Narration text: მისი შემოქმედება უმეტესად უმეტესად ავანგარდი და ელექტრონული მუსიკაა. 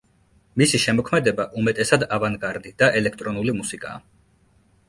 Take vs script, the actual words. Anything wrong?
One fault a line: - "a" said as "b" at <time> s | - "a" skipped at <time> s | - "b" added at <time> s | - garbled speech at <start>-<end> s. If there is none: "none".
- "უმეტესად" skipped at 2.0 s